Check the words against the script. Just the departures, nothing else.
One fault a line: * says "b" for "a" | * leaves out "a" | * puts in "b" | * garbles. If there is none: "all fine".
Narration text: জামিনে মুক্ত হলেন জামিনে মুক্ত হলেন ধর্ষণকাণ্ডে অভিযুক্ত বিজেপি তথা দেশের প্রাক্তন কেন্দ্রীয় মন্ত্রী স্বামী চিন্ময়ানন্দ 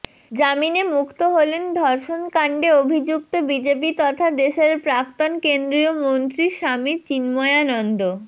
* leaves out "জামিনে মুক্ত হলেন"